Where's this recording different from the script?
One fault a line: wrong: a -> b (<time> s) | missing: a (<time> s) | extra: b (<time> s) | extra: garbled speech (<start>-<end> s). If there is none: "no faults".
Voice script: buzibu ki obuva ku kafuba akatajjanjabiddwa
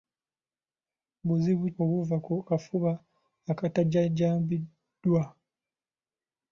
missing: ki (1.6 s)